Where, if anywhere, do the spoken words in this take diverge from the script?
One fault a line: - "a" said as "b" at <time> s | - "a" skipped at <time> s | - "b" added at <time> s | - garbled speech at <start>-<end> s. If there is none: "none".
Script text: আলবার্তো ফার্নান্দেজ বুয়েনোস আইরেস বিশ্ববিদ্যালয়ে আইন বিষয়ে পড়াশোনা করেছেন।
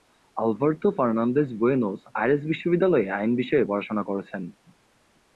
none